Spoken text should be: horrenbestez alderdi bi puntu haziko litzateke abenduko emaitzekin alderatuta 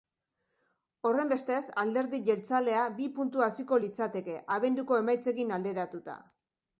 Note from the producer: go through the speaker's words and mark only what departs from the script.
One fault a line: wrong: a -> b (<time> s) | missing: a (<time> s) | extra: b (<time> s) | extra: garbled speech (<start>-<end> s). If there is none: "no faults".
extra: jeltzalea (2.3 s)